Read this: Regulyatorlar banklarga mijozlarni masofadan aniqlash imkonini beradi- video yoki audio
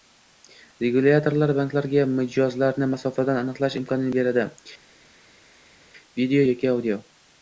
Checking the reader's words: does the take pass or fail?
pass